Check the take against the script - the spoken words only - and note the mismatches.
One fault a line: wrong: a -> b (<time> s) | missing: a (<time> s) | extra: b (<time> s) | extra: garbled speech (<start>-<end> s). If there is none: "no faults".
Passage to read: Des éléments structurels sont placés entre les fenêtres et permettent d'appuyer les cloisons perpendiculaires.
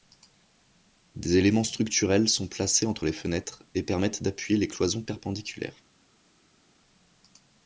no faults